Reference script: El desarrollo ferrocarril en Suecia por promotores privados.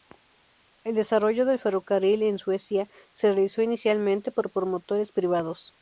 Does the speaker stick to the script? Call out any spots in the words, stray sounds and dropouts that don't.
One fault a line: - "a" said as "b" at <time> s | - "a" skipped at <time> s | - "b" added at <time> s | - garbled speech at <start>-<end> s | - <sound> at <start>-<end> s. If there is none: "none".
- "del" added at 1.4 s
- "se realizó inicialmente" added at 3.1 s